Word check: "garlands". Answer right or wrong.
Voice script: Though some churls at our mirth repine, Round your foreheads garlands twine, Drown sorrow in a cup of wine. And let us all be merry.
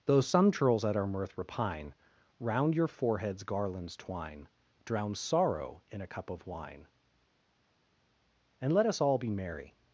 right